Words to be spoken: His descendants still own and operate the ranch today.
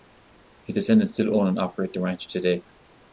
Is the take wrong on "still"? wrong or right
right